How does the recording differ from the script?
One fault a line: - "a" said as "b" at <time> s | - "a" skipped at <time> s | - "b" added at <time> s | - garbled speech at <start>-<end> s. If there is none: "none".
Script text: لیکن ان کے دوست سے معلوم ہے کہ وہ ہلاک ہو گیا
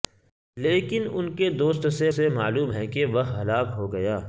- "سے" added at 2.1 s